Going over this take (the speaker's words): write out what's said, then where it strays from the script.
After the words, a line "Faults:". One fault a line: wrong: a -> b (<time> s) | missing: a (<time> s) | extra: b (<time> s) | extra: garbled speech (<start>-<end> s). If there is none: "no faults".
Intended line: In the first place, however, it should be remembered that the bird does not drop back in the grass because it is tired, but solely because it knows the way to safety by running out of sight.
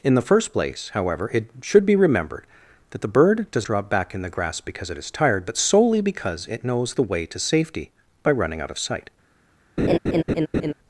In the first place, however, it should be remembered that the bird does drop back in the grass because it is tired, but solely because it knows the way to safety by running out of sight.
Faults:
missing: not (3.7 s)